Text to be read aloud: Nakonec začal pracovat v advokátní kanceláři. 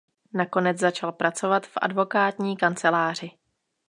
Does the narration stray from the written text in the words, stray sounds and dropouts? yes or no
no